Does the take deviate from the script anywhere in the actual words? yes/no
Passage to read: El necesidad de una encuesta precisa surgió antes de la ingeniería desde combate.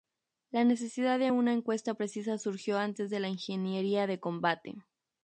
yes